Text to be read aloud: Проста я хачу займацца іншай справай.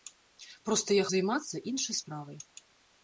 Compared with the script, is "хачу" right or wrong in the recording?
wrong